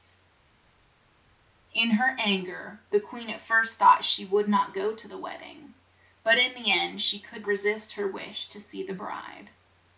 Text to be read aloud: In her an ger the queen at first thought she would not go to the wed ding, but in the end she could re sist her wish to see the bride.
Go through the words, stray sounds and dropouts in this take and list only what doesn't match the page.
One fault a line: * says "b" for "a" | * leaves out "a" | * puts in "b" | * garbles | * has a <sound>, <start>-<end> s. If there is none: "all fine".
all fine